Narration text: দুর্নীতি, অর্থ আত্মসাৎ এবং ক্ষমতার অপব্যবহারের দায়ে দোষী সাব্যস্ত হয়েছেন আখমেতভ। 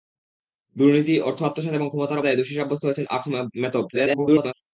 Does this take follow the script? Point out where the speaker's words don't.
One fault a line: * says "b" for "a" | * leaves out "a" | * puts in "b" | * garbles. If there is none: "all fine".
* leaves out "অপব্যবহারের"
* garbles